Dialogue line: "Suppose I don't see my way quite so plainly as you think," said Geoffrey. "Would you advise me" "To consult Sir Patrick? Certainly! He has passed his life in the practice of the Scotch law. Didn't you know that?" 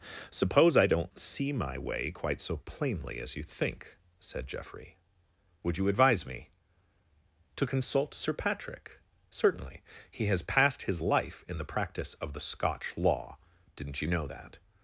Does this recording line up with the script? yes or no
yes